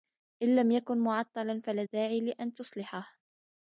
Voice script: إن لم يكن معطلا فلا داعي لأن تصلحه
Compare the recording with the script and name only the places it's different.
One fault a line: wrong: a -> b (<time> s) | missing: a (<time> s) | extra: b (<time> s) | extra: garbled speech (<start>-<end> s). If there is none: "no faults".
no faults